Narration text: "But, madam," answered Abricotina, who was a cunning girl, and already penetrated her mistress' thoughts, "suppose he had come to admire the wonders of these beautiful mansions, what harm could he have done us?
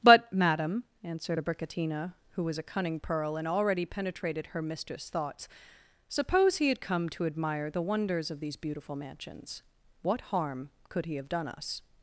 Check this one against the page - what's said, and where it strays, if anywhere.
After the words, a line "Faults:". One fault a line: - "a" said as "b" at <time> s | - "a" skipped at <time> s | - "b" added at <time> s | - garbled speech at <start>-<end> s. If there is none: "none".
"But, madam," answered Abricotina, who was a cunning pearl, and already penetrated her mistress' thoughts, "suppose he had come to admire the wonders of these beautiful mansions, what harm could he have done us?
Faults:
- "girl" said as "pearl" at 3.0 s